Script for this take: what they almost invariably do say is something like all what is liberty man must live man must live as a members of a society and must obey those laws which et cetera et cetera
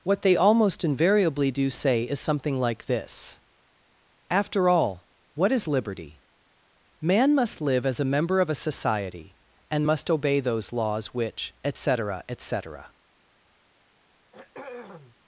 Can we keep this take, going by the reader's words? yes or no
no